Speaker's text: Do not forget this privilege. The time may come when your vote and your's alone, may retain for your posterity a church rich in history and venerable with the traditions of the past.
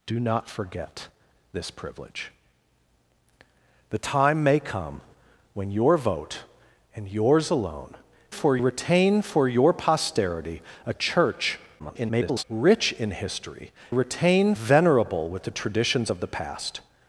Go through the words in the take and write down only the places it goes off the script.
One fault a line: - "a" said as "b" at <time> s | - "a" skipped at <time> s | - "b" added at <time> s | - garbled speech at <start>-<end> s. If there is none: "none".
- "may" said as "for" at 8.3 s
- garbled speech at 11.8-12.4 s
- "and" said as "retain" at 13.9 s